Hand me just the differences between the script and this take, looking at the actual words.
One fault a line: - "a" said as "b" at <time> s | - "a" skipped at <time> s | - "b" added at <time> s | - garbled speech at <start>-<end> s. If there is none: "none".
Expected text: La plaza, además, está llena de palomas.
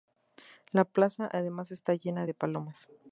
none